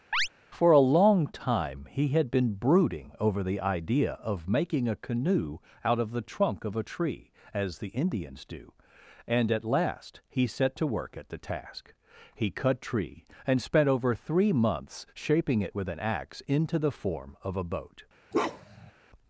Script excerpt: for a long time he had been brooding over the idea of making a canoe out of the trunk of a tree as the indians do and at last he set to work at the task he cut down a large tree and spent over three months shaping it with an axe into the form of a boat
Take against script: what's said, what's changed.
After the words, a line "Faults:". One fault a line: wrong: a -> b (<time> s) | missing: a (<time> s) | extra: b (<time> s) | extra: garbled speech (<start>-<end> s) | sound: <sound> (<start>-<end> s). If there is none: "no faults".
for a long time he had been brooding over the idea of making a canoe out of the trunk of a tree as the indians do and at last he set to work at the task he cut tree and spent over three months shaping it with an axe into the form of a boat
Faults:
sound: chirp (0.1-0.3 s)
missing: down a large (12.8 s)
sound: bark (18.3-18.9 s)